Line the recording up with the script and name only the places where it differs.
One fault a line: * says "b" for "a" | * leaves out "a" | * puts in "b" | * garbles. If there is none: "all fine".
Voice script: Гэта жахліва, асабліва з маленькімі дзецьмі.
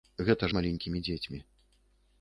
* leaves out "жахліва асабліва"